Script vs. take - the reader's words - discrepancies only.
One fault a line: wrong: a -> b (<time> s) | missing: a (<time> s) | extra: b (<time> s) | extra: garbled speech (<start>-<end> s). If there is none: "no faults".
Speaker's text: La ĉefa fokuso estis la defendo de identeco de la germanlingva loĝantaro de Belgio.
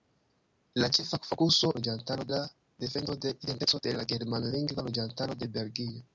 wrong: estis -> loĝantaro (1.8 s)